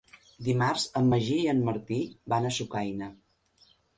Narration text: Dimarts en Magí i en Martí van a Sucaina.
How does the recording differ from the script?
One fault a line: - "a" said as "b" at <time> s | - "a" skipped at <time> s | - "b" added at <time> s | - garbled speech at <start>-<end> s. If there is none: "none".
none